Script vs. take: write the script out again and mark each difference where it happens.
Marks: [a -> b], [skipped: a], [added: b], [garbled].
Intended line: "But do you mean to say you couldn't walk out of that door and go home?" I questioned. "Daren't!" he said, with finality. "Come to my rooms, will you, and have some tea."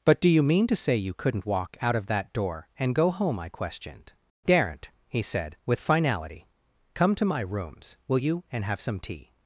"But do you mean to say you couldn't walk out of that door and go home?" I questioned. "Daren't!" he said, with finality. "Come to my rooms, will you, and have some tea."